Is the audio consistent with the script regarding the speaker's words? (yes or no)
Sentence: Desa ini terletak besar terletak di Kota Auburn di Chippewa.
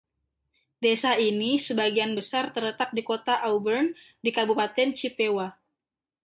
no